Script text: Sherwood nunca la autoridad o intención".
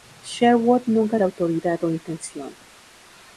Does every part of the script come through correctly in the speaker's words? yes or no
yes